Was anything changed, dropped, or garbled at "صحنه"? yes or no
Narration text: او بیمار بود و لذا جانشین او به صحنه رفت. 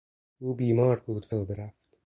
yes